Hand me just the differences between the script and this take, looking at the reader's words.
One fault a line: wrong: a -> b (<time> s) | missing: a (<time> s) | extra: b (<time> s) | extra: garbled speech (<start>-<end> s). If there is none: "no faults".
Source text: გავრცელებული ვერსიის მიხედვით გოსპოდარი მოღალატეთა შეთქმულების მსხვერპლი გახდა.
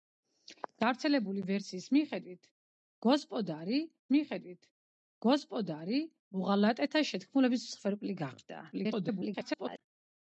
extra: მიხედვით გოსპოდარი (4.2 s)
extra: garbled speech (8.7-9.8 s)